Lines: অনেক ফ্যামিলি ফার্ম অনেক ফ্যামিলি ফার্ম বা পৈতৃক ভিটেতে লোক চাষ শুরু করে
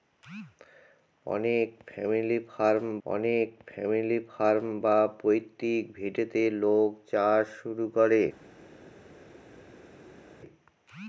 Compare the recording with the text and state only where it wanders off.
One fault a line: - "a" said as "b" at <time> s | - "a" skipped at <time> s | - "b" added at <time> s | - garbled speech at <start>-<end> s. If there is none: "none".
none